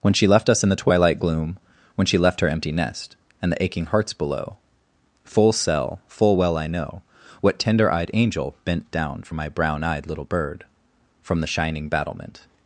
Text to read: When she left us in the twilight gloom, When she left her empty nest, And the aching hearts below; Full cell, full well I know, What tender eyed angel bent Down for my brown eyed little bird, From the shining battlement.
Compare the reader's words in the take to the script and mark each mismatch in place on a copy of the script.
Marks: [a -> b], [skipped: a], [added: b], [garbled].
When she left us in the twilight gloom, When she left her empty nest, And the aching hearts below; Full cell, full well I know, What tender eyed angel bent Down for my brown eyed little bird, From the shining battlement.